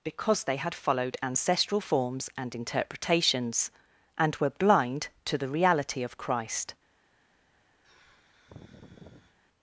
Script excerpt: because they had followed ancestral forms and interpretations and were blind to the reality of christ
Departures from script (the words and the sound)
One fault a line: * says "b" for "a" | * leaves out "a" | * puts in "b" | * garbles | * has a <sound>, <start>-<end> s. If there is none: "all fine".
* has a sigh, 7.8-9.4 s